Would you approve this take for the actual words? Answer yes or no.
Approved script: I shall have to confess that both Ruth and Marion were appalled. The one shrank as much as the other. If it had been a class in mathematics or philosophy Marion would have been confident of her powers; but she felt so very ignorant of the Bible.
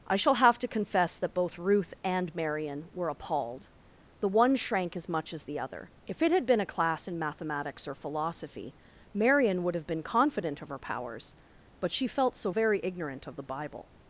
yes